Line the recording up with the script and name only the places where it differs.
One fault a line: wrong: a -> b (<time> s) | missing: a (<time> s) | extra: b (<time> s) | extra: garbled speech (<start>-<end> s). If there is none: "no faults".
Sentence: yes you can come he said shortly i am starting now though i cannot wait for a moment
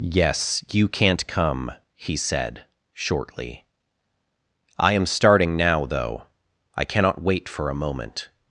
wrong: can -> can't (0.9 s)